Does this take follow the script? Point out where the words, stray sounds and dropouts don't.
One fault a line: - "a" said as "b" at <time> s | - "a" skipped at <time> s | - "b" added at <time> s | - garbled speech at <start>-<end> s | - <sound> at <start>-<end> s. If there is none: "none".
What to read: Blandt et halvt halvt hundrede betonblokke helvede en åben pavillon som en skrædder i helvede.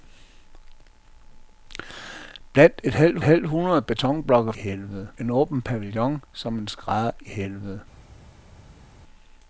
none